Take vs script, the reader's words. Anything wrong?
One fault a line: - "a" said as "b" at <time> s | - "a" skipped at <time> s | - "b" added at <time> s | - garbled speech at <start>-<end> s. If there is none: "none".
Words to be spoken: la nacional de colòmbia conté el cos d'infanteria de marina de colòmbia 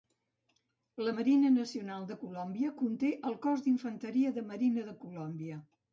- "marina" added at 1.1 s